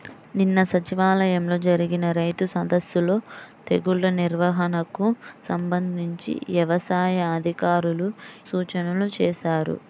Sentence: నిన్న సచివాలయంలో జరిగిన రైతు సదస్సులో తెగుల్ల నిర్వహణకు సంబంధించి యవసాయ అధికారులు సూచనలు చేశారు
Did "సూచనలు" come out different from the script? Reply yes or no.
no